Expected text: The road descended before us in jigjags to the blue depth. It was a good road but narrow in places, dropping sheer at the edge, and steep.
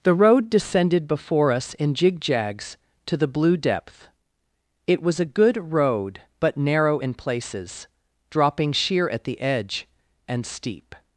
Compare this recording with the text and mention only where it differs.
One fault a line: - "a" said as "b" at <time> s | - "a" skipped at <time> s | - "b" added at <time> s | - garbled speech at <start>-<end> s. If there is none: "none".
none